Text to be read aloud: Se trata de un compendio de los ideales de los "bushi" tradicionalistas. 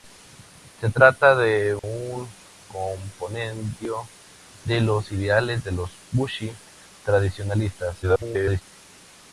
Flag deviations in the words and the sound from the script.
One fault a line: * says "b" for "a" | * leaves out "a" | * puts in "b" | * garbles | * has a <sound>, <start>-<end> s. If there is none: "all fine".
* has a dropout, 1.8-1.8 s
* garbles